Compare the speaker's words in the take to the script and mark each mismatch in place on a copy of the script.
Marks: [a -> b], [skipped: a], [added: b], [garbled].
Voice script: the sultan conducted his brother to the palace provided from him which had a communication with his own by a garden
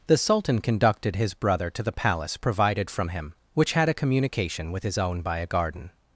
the sultan conducted his brother to the palace provided from him which had a communication with his own by a garden